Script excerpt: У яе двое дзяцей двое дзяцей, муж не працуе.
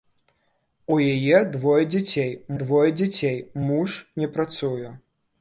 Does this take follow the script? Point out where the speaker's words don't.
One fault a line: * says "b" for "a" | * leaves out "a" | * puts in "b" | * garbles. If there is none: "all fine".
all fine